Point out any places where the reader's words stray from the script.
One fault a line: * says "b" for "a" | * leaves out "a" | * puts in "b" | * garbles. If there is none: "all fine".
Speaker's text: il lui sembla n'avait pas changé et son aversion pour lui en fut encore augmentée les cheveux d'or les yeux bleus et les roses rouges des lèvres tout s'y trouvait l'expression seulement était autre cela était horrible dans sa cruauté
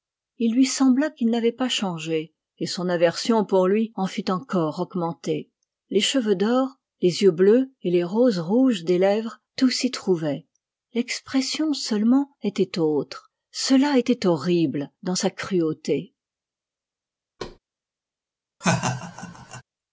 * puts in "qu'il"